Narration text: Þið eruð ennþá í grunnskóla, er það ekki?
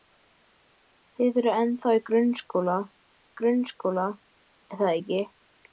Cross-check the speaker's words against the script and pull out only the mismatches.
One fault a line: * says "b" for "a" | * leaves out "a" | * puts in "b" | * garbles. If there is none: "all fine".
* puts in "grunnskóla"